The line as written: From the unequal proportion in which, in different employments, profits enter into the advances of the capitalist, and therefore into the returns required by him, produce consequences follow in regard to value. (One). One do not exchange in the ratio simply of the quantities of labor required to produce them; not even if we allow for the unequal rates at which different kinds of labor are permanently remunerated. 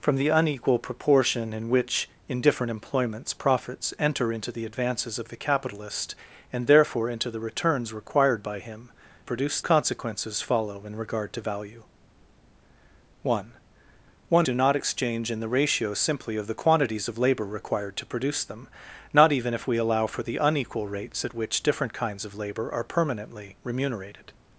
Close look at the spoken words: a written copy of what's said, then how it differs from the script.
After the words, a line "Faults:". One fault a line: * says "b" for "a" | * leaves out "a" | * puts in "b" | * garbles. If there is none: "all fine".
From the unequal proportion in which, in different employments, profits enter into the advances of the capitalist, and therefore into the returns required by him, produce consequences follow in regard to value. (One). One do not exchange in the ratio simply of the quantities of labor required to produce them; not even if we allow for the unequal rates at which different kinds of labor are permanently remunerated.
Faults:
all fine